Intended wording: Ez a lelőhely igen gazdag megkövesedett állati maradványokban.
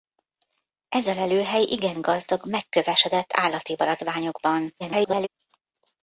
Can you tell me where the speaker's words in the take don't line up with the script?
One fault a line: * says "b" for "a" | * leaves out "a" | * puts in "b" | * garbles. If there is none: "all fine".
* garbles